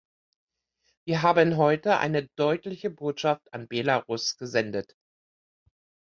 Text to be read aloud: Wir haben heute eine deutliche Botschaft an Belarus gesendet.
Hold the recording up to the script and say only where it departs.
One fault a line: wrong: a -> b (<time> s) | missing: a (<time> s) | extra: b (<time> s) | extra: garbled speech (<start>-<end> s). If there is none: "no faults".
no faults